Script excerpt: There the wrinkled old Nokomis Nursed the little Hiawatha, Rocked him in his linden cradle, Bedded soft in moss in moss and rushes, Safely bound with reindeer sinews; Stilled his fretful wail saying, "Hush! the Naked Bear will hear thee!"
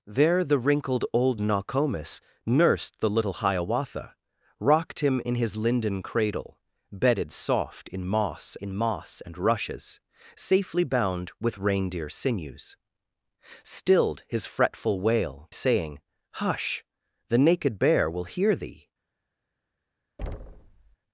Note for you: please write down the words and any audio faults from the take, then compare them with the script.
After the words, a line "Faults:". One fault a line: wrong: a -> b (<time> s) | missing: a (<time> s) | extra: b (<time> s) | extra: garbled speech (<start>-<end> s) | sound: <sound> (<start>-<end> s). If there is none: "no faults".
There the wrinkled old Nokomis Nursed the little Hiawatha, Rocked him in his linden cradle, Bedded soft in moss in moss and rushes, Safely bound with reindeer sinews; Stilled his fretful wail saying, "Hush! the Naked Bear will hear thee!"
Faults:
sound: thud (20.2-21.0 s)